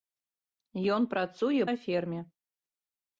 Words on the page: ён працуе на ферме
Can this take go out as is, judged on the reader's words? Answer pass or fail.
pass